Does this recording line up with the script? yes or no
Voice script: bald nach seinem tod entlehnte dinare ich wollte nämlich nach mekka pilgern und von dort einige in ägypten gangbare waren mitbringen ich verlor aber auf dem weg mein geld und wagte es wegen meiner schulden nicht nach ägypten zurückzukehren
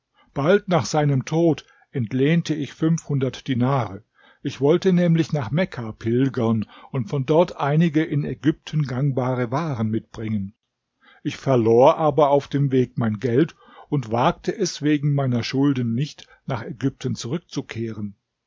no